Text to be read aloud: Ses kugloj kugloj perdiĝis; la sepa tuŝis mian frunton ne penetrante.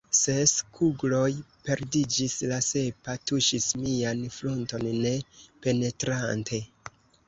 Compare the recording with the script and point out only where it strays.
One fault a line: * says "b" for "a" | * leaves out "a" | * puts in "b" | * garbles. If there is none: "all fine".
* leaves out "kugloj"